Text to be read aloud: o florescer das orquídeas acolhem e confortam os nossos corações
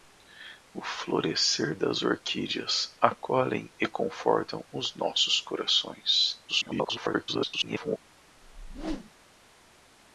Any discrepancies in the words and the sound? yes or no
yes